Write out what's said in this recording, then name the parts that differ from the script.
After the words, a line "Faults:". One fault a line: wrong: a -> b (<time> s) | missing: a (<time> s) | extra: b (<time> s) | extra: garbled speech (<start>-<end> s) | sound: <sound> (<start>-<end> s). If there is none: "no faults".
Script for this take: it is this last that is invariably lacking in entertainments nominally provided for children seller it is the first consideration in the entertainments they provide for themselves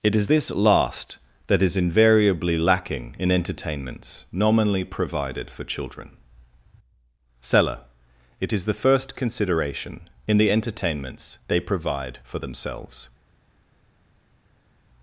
it is this last that is invariably lacking in entertainments nominally provided for children seller it is the first consideration in the entertainments they provide for themselves
Faults:
no faults